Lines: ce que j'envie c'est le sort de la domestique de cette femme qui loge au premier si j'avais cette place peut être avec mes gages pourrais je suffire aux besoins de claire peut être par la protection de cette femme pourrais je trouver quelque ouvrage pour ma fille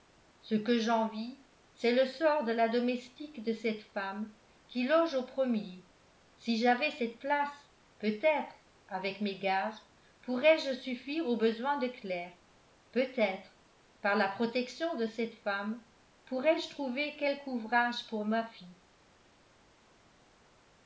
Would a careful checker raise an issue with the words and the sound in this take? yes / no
no